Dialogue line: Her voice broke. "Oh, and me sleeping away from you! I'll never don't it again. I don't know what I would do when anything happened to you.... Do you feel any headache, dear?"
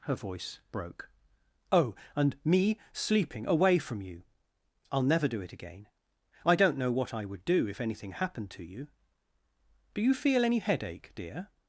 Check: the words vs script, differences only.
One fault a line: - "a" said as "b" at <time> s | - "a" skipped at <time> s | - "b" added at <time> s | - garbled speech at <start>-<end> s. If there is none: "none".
- "don't" said as "do" at 5.3 s
- "when" said as "if" at 7.7 s